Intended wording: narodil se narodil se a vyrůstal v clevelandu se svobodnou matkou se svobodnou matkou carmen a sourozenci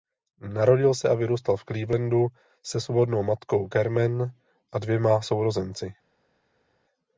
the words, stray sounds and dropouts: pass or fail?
fail